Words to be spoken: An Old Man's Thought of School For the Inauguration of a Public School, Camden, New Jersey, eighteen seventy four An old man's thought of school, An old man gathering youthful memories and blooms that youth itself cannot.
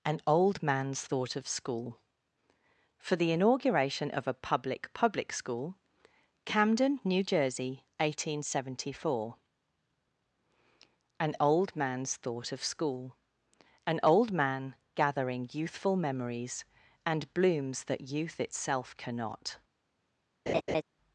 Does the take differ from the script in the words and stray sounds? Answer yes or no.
yes